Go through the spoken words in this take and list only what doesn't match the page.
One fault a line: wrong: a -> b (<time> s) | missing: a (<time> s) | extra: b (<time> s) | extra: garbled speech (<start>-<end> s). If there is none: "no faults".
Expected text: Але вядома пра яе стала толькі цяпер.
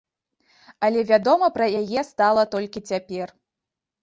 no faults